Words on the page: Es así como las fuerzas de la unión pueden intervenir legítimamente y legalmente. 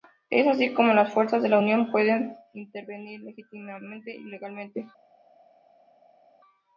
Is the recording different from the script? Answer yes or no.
no